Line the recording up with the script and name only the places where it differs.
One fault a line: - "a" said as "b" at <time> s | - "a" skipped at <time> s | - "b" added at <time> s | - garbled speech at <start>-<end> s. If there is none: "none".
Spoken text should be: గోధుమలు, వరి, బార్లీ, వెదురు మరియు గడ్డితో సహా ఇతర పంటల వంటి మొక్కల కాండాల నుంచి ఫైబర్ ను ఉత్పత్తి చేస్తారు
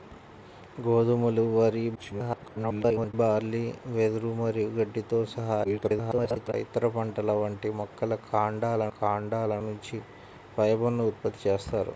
- garbled speech at 2.0-3.1 s
- garbled speech at 5.6-6.5 s
- "కాండాల" added at 9.0 s